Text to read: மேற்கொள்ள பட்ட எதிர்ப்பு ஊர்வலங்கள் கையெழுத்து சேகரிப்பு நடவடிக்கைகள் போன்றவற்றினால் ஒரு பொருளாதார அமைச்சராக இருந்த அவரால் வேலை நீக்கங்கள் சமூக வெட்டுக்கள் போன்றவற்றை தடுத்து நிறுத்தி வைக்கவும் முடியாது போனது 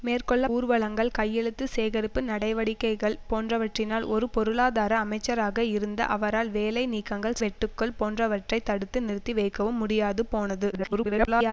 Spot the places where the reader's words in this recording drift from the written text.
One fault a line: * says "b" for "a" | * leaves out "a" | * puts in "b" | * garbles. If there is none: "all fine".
* leaves out "பட்ட எதிர்ப்பு"
* leaves out "சமூக"
* garbles